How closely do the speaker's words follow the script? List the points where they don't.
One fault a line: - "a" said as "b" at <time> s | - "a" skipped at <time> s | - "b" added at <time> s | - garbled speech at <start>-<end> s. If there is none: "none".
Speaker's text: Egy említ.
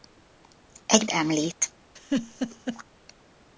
none